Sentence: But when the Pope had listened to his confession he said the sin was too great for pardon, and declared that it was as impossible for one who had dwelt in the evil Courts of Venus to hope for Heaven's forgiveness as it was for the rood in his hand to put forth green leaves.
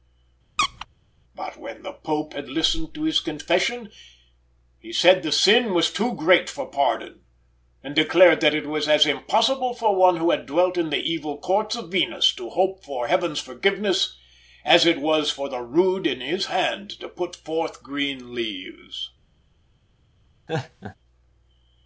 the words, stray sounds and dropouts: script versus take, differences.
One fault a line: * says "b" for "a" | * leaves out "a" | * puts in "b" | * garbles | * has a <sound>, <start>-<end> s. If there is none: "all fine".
* has a squeak, 0.6-0.9 s
* has a laugh, 20.5-21.0 s